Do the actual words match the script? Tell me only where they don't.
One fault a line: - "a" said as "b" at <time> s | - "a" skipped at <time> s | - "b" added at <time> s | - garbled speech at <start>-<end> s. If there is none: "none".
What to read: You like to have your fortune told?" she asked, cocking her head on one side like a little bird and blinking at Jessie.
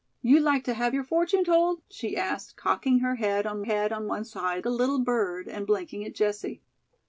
- "head on" added at 3.6 s
- "like" skipped at 4.7 s